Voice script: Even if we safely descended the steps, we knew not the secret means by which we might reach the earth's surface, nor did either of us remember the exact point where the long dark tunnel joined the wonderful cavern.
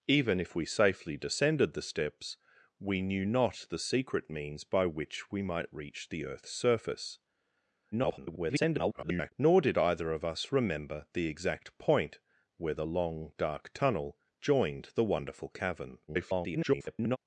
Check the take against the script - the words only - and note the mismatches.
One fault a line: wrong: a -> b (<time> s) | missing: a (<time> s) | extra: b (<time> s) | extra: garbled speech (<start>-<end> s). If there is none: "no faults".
extra: garbled speech (7.9-9.3 s)
extra: garbled speech (16.1-17.2 s)